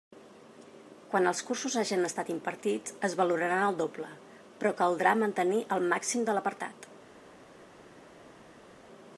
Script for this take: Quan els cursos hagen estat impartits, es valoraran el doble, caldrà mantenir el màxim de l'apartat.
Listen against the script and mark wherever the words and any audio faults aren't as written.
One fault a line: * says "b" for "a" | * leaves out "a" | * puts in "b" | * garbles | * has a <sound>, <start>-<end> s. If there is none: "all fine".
* puts in "però"